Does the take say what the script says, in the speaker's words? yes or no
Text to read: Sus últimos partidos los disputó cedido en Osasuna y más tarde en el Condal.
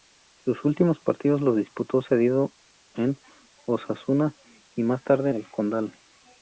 no